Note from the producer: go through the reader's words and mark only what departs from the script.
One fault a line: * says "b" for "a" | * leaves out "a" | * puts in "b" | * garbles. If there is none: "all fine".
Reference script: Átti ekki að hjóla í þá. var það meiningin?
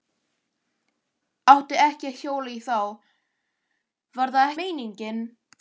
all fine